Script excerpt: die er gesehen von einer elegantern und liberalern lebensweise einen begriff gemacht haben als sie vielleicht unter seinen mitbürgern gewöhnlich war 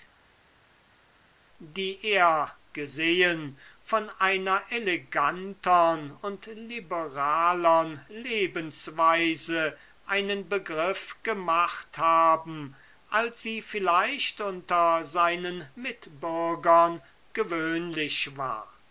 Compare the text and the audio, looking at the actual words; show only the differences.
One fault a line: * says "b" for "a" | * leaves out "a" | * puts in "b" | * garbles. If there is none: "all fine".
all fine